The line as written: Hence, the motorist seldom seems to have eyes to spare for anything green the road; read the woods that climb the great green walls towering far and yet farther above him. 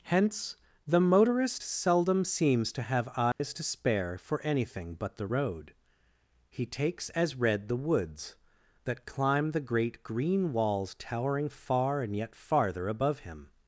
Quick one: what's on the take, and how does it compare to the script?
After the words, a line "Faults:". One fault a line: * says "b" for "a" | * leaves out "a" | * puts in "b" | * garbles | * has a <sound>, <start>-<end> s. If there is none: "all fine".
Hence, the motorist seldom seems to have eyes to spare for anything but the road; he takes as read the woods that climb the great green walls towering far and yet farther above him.
Faults:
* has a dropout, 3.3-3.4 s
* says "but" for "green"
* puts in "he takes as"